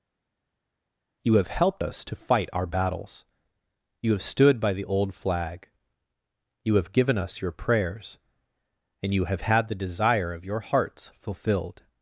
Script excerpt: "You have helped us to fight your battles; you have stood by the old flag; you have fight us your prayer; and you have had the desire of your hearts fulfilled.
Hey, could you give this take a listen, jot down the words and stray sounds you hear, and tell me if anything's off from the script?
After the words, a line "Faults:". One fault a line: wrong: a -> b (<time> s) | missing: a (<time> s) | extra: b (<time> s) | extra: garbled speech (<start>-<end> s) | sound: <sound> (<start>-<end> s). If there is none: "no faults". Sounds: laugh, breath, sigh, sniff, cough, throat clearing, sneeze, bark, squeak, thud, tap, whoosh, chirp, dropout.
"You have helped us to fight our battles; you have stood by the old flag; you have given us your prayers; and you have had the desire of your hearts fulfilled.
Faults:
wrong: your -> our (2.5 s)
wrong: fight -> given (6.9 s)
wrong: prayer -> prayers (7.5 s)